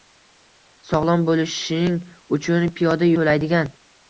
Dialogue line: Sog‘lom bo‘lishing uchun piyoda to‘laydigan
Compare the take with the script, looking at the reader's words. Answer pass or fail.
pass